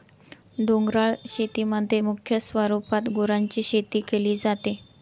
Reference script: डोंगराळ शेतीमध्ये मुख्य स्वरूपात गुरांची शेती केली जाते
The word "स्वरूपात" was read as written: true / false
true